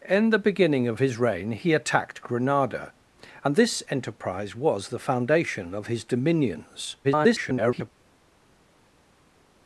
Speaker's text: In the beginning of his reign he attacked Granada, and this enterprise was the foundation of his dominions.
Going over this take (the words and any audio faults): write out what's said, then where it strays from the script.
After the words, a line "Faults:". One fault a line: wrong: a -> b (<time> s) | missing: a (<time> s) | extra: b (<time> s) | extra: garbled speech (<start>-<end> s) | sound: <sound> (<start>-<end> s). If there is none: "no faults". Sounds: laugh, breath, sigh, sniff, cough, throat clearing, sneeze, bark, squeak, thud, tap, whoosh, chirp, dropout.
In the beginning of his reign he attacked Granada, and this enterprise was the foundation of his dominions. [garbled]
Faults:
extra: garbled speech (7.0-7.9 s)